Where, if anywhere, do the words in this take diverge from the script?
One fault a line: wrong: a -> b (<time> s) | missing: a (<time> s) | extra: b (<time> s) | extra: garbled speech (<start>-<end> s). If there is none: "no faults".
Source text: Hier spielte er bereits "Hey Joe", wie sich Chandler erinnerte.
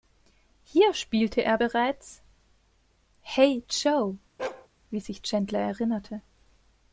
no faults